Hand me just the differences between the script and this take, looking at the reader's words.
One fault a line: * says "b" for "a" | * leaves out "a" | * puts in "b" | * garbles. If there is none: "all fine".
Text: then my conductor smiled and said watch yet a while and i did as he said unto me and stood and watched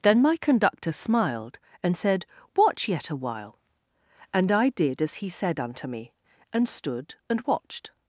all fine